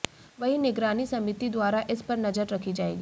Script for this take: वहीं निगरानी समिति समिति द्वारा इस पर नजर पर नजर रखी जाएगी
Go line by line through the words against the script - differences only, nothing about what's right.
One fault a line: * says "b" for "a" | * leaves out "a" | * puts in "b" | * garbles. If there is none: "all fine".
* leaves out "समिति"
* leaves out "पर नजर"